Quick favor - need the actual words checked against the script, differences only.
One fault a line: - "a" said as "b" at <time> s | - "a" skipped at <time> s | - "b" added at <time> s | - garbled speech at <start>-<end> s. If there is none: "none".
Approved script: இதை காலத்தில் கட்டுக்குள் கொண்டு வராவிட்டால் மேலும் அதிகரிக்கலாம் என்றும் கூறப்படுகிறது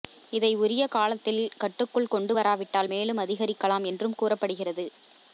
- "உரிய" added at 0.6 s